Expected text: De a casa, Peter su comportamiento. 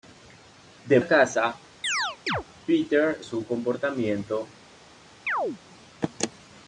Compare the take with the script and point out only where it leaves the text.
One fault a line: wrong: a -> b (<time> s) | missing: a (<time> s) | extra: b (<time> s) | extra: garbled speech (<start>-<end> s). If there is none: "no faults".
no faults